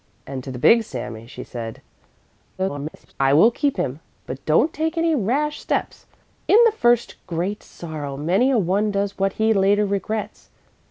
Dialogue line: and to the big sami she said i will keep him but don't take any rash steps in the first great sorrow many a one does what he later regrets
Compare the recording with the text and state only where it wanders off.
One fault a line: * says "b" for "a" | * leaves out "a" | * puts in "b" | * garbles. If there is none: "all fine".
* garbles